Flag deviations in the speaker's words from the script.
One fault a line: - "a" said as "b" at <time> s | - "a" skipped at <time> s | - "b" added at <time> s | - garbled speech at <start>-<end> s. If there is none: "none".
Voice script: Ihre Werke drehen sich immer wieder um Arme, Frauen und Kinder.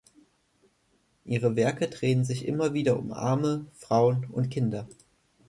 none